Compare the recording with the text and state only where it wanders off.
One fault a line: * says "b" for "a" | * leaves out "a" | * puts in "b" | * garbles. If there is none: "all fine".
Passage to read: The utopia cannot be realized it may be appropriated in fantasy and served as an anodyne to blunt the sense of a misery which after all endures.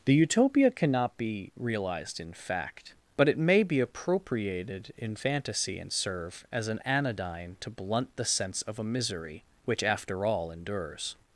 * puts in "in fact but"
* says "serve" for "served"